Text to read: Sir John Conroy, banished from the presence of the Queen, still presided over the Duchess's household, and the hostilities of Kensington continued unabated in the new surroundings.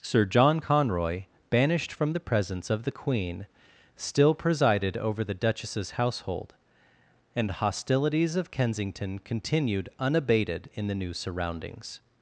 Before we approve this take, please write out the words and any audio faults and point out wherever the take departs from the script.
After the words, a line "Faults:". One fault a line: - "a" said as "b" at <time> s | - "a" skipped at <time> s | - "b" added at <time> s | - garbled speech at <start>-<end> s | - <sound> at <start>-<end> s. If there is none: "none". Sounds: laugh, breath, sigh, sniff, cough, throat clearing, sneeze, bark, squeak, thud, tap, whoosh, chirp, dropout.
Sir John Conroy, banished from the presence of the Queen, still presided over the Duchess's household, and hostilities of Kensington continued unabated in the new surroundings.
Faults:
- "the" skipped at 7.5 s